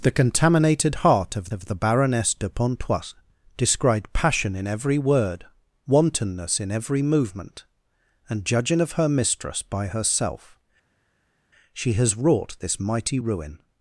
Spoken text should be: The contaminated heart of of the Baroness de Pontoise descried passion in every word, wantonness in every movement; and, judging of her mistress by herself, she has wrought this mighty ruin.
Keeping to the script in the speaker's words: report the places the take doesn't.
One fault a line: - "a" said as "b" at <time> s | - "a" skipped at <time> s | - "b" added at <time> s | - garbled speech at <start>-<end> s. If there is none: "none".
none